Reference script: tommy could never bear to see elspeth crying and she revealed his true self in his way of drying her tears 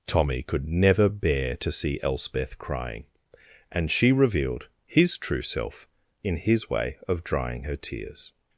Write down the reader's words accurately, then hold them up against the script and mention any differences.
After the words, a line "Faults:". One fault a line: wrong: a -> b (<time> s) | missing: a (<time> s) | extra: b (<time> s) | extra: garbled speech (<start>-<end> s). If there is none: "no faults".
tommy could never bear to see elspeth crying and she revealed his true self in his way of drying her tears
Faults:
no faults